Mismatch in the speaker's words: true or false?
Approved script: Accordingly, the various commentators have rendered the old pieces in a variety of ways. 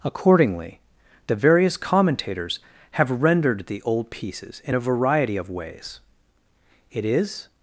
true